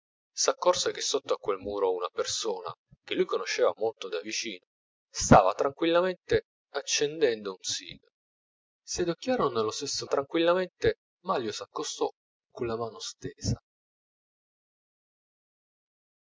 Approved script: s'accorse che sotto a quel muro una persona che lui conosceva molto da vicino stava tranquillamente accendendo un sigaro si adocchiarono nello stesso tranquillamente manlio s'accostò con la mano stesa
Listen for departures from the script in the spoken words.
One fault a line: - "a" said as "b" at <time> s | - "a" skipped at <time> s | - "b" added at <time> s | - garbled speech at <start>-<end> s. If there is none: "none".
none